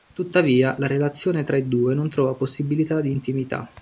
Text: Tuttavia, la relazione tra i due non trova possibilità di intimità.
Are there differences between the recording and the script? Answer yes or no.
no